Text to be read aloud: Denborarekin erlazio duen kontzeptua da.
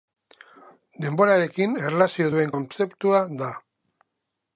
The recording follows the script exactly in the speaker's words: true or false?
true